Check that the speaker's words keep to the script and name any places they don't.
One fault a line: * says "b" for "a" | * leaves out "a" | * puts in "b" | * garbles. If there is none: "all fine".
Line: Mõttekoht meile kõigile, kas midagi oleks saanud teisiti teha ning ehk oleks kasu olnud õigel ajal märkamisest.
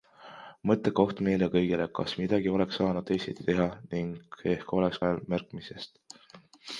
* leaves out "kasu olnud õigel"